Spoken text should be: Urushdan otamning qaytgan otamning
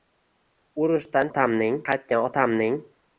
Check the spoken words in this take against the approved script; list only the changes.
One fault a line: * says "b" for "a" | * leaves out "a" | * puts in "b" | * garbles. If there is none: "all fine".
all fine